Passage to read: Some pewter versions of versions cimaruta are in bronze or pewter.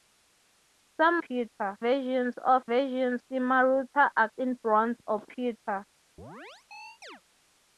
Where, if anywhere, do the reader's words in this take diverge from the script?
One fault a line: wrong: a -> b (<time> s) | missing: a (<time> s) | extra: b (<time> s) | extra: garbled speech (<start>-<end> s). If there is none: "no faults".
no faults